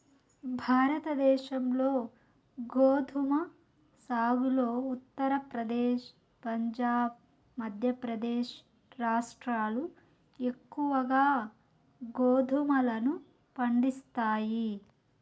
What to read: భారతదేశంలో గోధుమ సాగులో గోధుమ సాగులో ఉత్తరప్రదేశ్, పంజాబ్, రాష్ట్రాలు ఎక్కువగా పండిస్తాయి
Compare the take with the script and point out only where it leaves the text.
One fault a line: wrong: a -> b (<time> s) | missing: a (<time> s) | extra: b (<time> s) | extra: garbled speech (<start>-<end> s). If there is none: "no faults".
missing: గోధుమ సాగులో (4.7 s)
extra: మధ్యప్రదేశ్ (7.6 s)
extra: గోధుమలను (12.1 s)